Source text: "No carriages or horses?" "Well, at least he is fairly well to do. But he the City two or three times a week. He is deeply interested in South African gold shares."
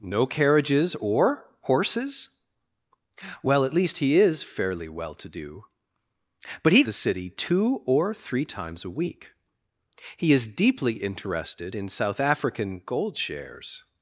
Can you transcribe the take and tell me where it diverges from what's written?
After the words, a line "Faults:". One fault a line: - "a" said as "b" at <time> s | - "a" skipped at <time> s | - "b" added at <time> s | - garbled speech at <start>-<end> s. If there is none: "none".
"No carriages or horses?" "Well, at least he is fairly well to do. But he the City two or three times a week. He is deeply interested in South African gold shares."
Faults:
none